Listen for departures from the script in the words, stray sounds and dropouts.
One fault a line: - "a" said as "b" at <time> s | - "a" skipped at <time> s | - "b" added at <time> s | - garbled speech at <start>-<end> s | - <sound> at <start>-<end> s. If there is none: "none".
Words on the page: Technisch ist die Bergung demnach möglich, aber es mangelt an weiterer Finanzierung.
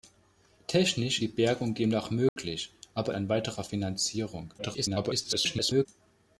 - "ist" skipped at 1.2 s
- dropout at 2.3-2.4 s
- "es mangelt" skipped at 3.1 s
- garbled speech at 4.6-5.9 s